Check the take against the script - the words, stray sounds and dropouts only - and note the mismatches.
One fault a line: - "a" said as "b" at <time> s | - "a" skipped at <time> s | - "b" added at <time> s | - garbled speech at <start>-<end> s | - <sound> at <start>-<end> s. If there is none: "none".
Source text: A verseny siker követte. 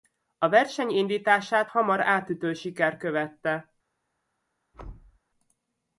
- "indítását hamar átütő" added at 0.9 s
- thud at 4.7-5.2 s